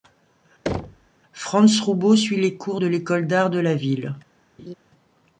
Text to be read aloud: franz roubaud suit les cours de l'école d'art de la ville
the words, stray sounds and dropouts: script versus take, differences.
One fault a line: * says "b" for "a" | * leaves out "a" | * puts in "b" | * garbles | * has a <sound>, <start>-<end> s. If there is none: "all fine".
* has a thud, 0.7-1.1 s
* has a laugh, 4.6-4.7 s